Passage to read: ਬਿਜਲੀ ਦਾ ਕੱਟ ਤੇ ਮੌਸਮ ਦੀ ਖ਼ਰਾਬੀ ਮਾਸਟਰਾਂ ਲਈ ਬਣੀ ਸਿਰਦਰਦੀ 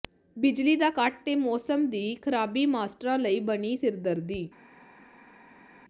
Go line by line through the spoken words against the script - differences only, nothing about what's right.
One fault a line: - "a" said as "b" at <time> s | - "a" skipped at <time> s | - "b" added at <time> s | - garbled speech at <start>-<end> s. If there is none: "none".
none